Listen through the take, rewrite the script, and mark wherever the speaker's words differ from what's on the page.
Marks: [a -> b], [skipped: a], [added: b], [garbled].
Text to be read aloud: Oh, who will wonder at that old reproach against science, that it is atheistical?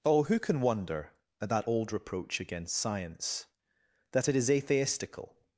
Oh, who [will -> can] wonder at that old reproach against science, that it is atheistical?